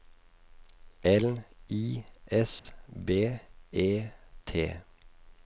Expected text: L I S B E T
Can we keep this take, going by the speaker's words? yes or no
yes